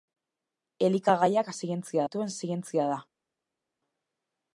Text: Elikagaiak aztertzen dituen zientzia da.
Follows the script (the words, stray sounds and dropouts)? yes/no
no